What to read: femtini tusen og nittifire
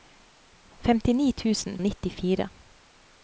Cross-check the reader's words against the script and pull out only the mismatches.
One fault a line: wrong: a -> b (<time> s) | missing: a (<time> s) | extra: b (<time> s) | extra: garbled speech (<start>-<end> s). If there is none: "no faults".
no faults